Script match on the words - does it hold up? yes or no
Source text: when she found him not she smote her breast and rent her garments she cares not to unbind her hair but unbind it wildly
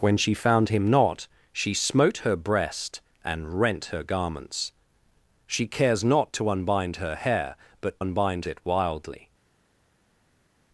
yes